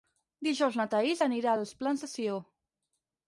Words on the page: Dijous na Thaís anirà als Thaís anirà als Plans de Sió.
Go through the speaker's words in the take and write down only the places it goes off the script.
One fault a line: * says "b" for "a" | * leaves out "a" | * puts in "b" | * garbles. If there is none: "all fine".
* leaves out "Thaís anirà als"